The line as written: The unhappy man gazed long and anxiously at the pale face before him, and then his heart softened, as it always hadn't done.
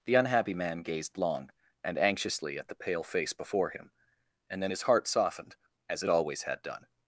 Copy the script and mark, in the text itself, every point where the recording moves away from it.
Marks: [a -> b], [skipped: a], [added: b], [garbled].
The unhappy man gazed long and anxiously at the pale face before him, and then his heart softened, as it always [hadn't -> had] done.